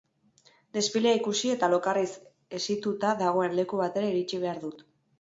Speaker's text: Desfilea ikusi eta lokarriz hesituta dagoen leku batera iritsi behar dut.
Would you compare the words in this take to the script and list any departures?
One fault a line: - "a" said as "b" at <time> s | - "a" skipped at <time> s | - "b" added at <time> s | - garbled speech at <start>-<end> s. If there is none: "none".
none